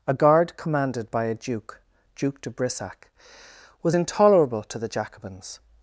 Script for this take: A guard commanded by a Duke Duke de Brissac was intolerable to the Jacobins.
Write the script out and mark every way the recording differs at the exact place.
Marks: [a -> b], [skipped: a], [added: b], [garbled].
A guard commanded by a Duke Duke de Brissac was intolerable to the Jacobins.